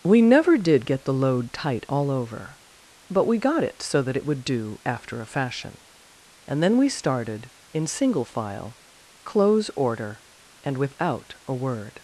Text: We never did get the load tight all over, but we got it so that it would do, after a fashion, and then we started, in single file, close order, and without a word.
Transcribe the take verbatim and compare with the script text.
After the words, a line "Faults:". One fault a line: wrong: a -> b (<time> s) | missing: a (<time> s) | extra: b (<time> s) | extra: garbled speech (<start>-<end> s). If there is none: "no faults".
We never did get the load tight all over, but we got it so that it would do, after a fashion, and then we started, in single file, close order, and without a word.
Faults:
no faults